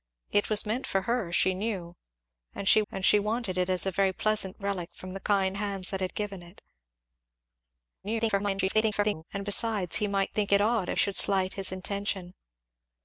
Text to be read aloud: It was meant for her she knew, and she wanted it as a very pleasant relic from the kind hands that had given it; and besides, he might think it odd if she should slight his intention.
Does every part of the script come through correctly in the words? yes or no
no